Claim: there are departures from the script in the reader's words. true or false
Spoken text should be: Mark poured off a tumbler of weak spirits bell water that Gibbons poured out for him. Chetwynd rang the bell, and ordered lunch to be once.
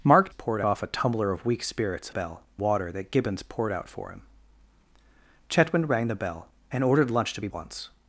false